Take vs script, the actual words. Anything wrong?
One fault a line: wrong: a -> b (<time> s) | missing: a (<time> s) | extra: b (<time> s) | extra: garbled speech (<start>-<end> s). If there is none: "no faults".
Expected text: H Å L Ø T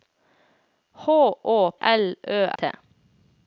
no faults